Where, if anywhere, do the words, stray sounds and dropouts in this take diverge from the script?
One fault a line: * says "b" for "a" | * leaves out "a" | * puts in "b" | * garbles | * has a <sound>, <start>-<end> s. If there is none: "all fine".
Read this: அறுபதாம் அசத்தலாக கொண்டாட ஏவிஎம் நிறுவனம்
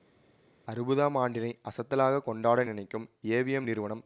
* puts in "ஆண்டினை"
* puts in "நினைக்கும்"